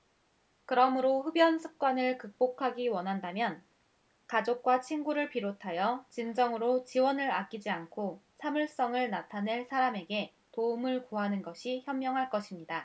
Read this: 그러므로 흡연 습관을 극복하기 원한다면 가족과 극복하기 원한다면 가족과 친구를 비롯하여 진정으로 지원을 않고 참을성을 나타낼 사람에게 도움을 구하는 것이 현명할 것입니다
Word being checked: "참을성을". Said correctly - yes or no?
yes